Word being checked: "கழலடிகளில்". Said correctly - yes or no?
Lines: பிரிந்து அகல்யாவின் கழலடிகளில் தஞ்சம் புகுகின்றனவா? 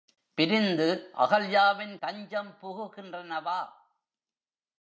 no